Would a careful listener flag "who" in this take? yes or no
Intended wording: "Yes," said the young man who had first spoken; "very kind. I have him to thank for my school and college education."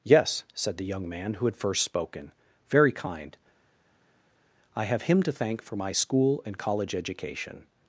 no